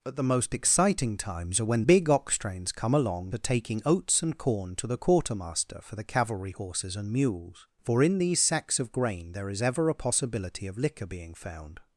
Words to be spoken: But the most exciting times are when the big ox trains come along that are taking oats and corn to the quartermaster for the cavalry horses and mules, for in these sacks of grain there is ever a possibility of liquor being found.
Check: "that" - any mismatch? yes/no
yes